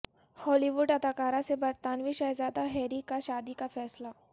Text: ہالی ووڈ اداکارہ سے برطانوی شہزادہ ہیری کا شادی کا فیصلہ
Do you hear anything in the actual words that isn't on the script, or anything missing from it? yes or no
no